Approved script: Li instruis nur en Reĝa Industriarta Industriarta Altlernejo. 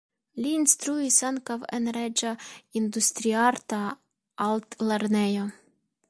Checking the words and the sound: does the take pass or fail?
fail